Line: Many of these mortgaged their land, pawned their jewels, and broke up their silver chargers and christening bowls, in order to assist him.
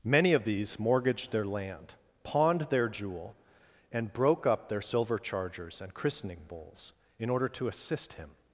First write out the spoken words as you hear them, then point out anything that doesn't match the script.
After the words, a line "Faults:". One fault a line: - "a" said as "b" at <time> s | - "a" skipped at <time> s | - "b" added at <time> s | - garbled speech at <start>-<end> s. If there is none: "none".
Many of these mortgaged their land, pawned their jewel, and broke up their silver chargers and christening bowls, in order to assist him.
Faults:
- "jewels" said as "jewel" at 2.9 s